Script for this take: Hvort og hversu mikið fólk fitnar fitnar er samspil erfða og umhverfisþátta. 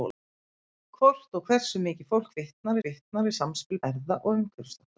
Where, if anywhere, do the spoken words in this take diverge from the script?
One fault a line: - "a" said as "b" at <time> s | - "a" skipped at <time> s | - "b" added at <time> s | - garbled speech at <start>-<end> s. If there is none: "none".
none